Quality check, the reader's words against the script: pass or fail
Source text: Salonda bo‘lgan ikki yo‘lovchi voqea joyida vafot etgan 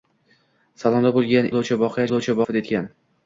fail